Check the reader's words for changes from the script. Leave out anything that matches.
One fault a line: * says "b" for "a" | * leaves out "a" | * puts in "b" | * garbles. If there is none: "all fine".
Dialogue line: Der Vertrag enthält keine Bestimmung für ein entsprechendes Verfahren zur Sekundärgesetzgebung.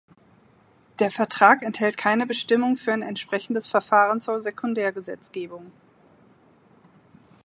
all fine